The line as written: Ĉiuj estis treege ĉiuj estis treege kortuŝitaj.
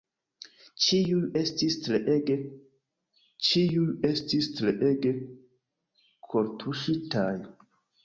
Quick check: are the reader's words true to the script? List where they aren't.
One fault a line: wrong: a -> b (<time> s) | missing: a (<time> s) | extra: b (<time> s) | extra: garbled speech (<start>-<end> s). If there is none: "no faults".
no faults